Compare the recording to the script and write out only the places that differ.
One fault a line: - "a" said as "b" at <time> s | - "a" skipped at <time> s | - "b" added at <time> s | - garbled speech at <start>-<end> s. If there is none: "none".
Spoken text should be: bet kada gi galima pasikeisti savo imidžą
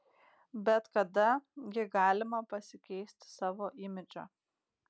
none